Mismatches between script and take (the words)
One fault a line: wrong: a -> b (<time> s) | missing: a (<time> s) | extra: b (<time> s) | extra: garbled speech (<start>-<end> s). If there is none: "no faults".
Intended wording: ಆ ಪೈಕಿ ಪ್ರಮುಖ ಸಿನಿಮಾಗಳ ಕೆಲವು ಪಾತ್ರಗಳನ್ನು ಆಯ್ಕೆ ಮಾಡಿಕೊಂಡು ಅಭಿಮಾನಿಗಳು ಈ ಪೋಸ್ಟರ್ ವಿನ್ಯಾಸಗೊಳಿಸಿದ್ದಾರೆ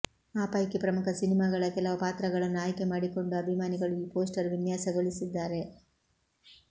no faults